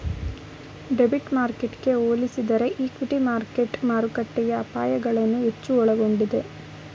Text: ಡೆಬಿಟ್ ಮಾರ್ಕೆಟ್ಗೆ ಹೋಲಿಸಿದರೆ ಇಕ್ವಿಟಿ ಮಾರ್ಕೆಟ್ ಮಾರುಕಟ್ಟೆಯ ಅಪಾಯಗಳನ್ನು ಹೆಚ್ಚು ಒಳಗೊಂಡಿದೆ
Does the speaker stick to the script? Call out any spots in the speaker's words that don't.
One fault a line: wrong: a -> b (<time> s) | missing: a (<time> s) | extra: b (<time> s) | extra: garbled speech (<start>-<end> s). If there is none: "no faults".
no faults